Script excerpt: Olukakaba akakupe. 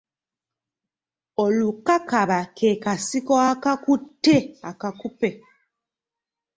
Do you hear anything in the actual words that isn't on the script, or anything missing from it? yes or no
yes